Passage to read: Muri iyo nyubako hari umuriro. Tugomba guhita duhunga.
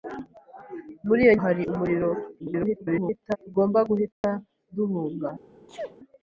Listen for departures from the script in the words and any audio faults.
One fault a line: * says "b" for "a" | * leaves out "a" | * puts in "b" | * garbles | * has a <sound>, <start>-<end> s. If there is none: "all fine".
* leaves out "nyubako"
* garbles
* has a dropout, 4.1-4.2 s
* has a sneeze, 5.7-6.0 s